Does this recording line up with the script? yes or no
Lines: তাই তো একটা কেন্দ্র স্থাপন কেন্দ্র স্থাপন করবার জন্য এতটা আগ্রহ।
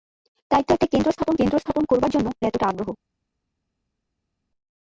yes